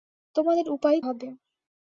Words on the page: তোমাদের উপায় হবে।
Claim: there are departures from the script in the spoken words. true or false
false